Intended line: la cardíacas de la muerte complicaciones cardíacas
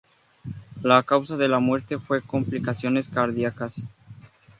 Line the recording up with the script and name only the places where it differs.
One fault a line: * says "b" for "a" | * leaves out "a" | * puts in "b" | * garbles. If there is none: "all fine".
* says "causa" for "cardíacas"
* puts in "fue"